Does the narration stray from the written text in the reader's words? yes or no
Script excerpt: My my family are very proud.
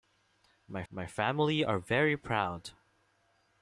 no